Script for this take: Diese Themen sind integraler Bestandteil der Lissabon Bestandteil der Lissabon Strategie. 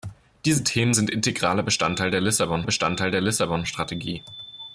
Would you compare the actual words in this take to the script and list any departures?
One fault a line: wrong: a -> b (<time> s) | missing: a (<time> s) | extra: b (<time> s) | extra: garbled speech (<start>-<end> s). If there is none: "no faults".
no faults